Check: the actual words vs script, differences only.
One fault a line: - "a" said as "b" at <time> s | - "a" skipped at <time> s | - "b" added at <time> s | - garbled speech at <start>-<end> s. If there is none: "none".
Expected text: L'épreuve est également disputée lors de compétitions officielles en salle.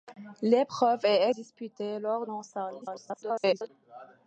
- "également" skipped at 1.3 s
- "de compétitions officielles" skipped at 2.2 s
- garbled speech at 2.8-3.7 s